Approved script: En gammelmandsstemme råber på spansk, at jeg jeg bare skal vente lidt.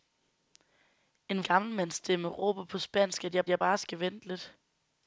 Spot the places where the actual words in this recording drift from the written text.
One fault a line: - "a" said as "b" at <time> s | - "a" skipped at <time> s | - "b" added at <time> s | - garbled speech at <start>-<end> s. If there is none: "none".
none